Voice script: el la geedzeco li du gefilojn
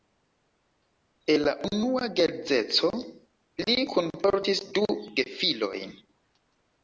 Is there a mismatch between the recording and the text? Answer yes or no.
yes